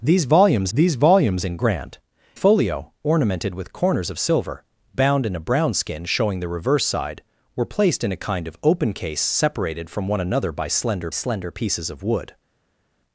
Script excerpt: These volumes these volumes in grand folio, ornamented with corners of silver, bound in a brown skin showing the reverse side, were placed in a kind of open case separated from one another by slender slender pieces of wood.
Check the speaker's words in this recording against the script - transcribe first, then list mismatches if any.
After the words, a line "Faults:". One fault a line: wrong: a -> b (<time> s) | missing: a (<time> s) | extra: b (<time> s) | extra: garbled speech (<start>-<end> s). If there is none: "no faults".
These volumes these volumes in grand folio, ornamented with corners of silver, bound in a brown skin showing the reverse side, were placed in a kind of open case separated from one another by slender slender pieces of wood.
Faults:
no faults